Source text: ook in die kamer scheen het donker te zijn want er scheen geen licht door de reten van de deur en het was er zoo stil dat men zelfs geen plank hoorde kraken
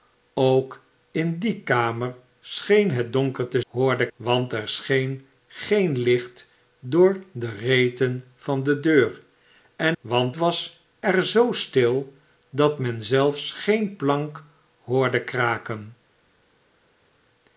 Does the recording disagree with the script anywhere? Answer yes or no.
yes